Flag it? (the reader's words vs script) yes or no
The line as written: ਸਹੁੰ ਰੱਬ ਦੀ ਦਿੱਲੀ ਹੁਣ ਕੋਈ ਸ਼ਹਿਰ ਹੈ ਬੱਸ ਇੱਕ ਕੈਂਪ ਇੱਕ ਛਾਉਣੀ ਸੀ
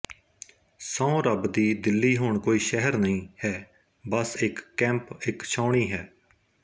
yes